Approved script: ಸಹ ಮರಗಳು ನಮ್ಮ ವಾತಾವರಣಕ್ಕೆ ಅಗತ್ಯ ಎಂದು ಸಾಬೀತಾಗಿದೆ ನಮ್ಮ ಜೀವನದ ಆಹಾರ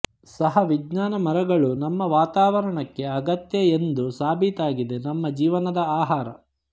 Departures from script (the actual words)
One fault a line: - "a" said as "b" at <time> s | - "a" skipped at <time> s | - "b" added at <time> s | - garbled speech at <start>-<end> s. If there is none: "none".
- "ವಿಜ್ಞಾನ" added at 0.6 s